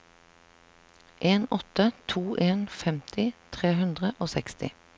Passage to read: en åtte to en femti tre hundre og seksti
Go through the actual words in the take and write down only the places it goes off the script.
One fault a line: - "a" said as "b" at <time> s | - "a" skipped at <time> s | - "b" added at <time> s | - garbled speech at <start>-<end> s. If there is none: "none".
none